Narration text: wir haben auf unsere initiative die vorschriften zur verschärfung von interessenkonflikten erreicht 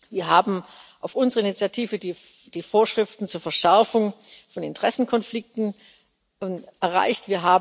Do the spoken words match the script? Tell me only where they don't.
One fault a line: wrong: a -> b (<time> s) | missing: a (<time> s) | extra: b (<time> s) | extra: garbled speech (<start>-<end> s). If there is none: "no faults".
no faults